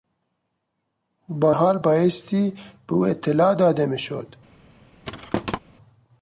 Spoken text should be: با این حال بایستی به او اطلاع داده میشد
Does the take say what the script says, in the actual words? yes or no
no